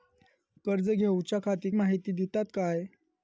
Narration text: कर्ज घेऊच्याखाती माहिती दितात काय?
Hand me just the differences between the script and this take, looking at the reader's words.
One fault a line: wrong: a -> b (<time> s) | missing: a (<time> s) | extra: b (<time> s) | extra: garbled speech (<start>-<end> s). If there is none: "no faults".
no faults